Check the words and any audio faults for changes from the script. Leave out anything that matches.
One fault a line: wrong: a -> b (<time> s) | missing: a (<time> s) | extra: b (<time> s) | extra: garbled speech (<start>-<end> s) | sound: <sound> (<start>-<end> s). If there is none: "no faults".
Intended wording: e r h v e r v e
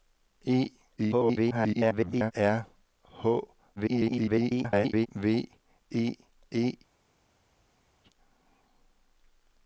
extra: garbled speech (1.0-2.3 s)
extra: garbled speech (3.8-5.1 s)
missing: r v (6.2 s)